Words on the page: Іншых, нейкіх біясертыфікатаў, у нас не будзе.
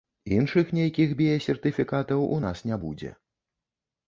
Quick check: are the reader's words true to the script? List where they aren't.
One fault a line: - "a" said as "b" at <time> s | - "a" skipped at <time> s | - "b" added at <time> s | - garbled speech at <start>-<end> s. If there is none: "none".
none